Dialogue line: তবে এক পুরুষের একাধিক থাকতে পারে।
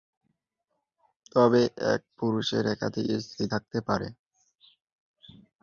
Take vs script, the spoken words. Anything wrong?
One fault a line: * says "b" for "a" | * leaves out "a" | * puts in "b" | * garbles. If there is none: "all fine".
* puts in "স্ত্রী"